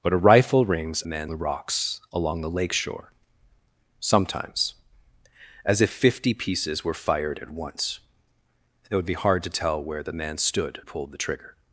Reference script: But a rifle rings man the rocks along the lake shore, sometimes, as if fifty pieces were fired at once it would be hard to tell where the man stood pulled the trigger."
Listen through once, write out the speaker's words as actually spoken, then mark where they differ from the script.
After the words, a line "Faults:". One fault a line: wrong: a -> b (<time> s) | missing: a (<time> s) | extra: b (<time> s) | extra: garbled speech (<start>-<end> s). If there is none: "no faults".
But a rifle rings man the rocks along the lake shore, sometimes, as if fifty pieces were fired at once it would be hard to tell where the man stood pulled the trigger."
Faults:
no faults